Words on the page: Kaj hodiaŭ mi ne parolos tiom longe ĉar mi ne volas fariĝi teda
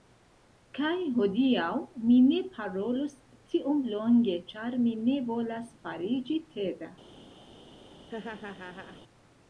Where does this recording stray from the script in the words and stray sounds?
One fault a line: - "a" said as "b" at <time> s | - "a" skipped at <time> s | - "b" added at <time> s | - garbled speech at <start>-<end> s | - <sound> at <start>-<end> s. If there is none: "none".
- laugh at 8.1-9.0 s